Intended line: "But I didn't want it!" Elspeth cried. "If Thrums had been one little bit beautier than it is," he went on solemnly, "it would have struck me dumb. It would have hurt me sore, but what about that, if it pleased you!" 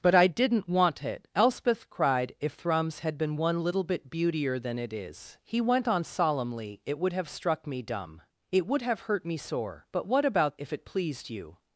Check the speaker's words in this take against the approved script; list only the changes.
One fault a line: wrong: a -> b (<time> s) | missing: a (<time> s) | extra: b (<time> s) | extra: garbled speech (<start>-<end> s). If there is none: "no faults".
missing: that (10.6 s)